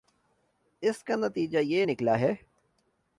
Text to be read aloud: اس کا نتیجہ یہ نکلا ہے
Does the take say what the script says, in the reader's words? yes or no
yes